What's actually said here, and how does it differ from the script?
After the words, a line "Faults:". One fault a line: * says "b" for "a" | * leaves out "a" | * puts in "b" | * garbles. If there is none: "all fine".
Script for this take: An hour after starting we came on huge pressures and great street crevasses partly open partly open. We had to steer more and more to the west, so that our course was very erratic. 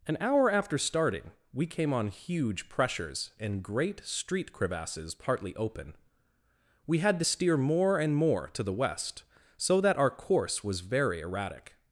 An hour after starting we came on huge pressures and great street crevasses partly open. We had to steer more and more to the west, so that our course was very erratic.
Faults:
* leaves out "partly open"